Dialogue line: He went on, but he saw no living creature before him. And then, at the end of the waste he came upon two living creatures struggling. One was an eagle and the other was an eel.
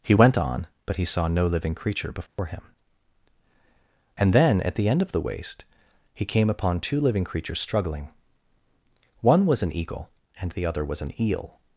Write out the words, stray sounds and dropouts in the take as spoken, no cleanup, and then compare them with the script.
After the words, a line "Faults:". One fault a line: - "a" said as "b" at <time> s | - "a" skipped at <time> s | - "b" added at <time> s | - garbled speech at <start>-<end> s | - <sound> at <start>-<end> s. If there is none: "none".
He went on, but he saw no living creature before him. And then, at the end of the waste he came upon two living creatures struggling. One was an eagle and the other was an eel.
Faults:
- dropout at 2.3-2.4 s